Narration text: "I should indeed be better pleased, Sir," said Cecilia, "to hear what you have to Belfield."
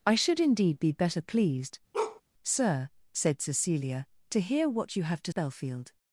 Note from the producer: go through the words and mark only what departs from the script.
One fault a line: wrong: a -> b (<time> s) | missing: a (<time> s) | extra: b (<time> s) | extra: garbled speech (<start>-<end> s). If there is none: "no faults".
no faults